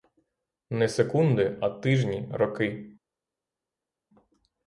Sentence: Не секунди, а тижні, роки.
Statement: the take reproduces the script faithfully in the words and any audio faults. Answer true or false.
true